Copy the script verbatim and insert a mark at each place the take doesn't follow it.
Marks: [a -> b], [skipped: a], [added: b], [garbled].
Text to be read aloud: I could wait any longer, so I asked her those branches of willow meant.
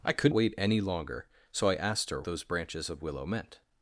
I could wait any longer, so I asked her those branches of willow meant.